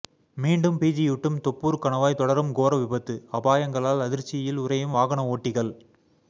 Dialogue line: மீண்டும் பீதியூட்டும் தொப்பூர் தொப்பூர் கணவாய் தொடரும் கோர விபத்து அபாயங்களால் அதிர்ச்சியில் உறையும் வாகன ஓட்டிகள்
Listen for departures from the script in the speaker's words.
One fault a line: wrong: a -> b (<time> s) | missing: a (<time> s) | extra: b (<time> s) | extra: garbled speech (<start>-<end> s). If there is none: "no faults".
missing: தொப்பூர் (1.8 s)